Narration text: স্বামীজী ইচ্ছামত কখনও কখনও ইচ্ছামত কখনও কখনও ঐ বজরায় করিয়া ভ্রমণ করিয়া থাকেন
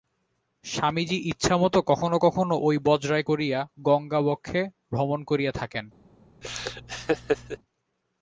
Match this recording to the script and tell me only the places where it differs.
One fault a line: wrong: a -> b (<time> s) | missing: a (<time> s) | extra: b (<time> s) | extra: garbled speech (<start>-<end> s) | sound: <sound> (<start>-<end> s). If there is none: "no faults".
missing: ইচ্ছামত কখনও কখনও (2.5 s)
extra: গঙ্গাবক্ষে (3.8 s)
sound: laugh (6.4-7.6 s)